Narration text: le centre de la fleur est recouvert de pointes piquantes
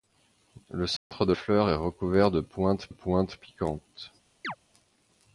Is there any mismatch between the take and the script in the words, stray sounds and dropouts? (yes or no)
yes